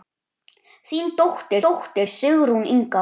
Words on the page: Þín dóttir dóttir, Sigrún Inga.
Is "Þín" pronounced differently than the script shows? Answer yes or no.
no